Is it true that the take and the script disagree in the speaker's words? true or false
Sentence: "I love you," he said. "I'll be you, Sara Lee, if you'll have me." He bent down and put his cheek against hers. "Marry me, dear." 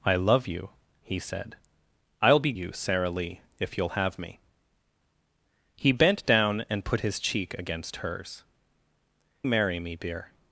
false